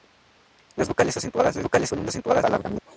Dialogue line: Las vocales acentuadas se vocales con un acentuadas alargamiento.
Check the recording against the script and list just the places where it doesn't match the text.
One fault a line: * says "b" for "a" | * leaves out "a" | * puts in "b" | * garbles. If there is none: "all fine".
all fine